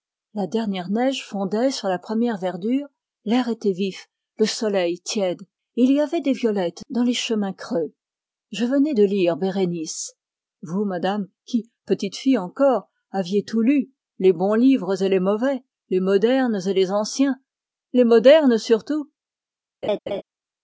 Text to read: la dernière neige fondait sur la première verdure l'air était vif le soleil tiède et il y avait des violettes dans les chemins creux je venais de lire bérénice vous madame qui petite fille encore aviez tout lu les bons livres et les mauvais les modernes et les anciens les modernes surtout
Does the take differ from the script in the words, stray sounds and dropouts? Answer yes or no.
yes